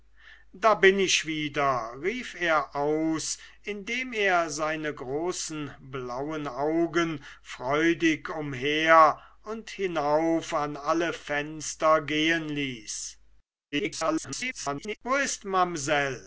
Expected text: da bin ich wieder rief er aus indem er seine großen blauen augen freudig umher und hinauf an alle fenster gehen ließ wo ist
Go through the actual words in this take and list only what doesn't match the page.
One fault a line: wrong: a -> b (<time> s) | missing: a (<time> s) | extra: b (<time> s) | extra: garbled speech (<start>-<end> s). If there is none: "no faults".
extra: garbled speech (13.7-15.0 s)